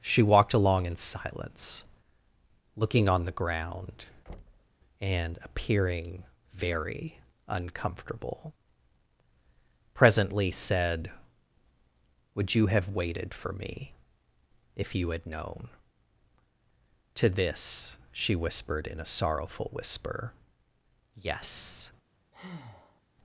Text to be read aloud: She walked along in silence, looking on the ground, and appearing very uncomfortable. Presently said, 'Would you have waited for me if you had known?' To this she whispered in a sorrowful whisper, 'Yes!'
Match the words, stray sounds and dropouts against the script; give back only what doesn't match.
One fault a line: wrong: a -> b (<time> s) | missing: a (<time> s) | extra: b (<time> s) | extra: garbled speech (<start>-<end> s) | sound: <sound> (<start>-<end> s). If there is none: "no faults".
sound: thud (4.3-4.8 s)
sound: breath (22.3-23.0 s)